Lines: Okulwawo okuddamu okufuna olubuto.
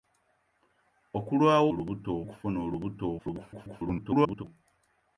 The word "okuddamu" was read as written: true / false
false